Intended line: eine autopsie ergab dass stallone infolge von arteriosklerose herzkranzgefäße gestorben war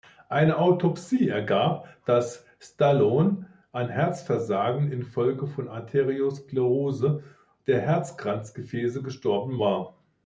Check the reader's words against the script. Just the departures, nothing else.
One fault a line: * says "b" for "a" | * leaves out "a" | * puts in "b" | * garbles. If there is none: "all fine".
* puts in "an herzversagen"
* puts in "der"